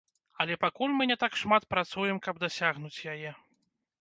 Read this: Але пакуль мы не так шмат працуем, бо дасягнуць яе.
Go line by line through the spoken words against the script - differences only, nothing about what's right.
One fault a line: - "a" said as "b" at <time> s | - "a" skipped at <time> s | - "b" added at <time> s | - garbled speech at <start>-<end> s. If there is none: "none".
- "бо" said as "каб" at 2.3 s